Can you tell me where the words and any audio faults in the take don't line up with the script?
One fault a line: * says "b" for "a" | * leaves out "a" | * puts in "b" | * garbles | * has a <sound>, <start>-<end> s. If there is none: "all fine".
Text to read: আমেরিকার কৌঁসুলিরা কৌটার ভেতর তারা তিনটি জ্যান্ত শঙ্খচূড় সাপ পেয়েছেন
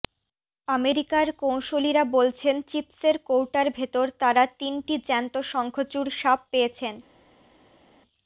* puts in "বলছেন চিপসের"